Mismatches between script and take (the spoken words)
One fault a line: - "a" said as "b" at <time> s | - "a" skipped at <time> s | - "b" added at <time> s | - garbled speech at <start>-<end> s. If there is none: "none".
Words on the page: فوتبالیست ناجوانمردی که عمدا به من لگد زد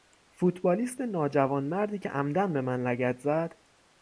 none